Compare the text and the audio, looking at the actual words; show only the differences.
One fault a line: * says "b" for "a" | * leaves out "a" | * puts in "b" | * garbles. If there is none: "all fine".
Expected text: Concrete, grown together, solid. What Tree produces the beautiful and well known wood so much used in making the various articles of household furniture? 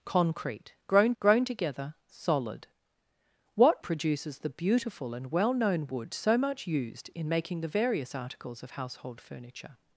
* puts in "grown"
* leaves out "Tree"